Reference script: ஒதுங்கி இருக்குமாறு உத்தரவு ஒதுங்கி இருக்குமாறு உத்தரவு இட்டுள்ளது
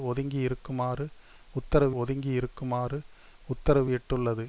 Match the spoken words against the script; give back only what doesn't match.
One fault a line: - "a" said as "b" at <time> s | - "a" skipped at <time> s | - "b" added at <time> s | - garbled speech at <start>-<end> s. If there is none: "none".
none